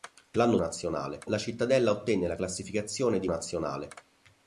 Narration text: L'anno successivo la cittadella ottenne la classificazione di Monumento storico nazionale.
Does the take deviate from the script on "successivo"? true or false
true